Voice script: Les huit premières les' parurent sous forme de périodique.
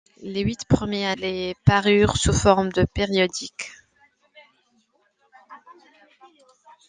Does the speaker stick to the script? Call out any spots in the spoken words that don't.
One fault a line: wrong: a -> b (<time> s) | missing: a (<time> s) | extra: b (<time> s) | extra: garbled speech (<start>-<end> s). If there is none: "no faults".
no faults